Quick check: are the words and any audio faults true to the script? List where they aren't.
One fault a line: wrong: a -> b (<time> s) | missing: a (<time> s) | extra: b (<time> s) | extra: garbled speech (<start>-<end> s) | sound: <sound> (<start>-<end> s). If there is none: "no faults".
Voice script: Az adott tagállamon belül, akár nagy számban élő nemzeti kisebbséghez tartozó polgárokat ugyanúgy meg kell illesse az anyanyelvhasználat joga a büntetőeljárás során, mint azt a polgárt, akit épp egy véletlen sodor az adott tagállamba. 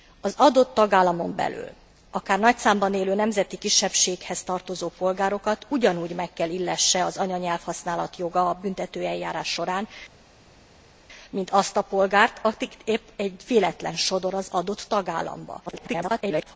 extra: garbled speech (15.7-16.6 s)